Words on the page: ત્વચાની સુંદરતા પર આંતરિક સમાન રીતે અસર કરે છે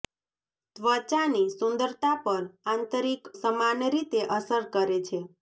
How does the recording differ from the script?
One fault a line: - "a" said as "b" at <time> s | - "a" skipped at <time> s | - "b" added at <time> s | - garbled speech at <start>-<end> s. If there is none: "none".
none